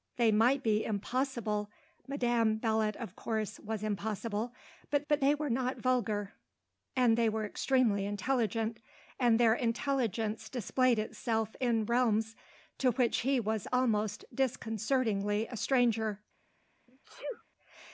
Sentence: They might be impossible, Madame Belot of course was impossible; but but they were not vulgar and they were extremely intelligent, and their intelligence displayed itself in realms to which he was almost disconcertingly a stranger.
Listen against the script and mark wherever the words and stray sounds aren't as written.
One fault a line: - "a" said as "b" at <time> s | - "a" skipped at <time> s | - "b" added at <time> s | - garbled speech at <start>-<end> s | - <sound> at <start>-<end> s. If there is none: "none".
- sneeze at 16.9-17.4 s